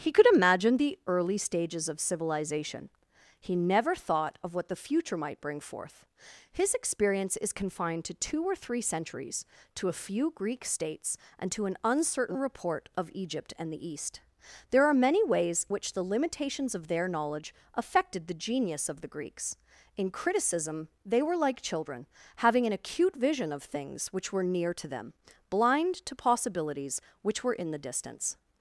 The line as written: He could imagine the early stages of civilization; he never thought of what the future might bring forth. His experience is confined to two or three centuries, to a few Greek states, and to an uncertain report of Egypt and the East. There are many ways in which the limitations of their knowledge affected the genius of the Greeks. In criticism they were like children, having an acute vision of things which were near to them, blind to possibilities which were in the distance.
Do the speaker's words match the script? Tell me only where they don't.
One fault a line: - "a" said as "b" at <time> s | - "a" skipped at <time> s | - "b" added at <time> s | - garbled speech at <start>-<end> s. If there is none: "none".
- "in" skipped at 15.7 s